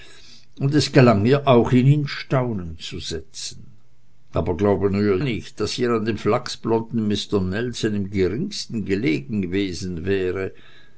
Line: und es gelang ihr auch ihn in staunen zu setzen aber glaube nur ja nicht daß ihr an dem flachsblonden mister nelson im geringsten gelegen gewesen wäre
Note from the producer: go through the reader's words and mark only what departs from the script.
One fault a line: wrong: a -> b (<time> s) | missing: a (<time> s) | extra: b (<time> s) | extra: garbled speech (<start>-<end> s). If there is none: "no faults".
missing: ja (5.2 s)